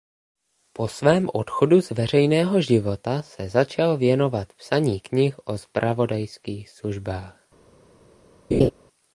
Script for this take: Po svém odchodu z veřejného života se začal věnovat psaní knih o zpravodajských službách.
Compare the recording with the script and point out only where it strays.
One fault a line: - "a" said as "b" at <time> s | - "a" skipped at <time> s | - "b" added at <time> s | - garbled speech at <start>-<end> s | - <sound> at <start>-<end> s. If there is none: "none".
- laugh at 8.5-8.7 s